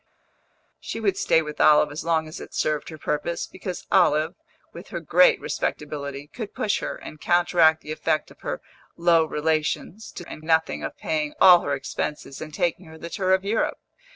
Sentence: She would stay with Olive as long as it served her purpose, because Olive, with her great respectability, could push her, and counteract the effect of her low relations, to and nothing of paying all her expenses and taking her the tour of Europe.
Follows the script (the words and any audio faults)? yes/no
yes